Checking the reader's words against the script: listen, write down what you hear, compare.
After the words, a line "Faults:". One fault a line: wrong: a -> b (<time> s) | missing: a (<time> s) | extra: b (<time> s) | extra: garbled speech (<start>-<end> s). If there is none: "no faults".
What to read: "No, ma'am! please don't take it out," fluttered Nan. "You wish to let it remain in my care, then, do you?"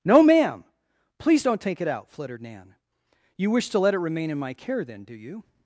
"No, ma'am! please don't take it out," fluttered Nan. "You wish to let it remain in my care, then, do you?"
Faults:
no faults